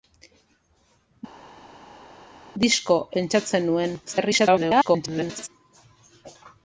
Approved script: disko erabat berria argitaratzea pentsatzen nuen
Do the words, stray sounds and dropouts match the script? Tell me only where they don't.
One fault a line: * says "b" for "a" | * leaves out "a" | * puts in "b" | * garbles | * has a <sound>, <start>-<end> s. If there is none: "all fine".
* leaves out "erabat berria argitaratzea"
* garbles